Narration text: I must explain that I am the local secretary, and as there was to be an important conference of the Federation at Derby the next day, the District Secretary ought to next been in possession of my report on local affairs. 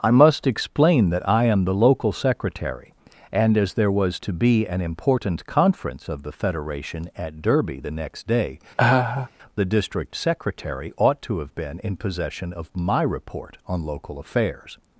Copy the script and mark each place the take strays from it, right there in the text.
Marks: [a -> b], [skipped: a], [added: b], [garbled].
I must explain that I am the local secretary, and as there was to be an important conference of the Federation at Derby the next day, the District Secretary ought to [next -> have] been in possession of my report on local affairs.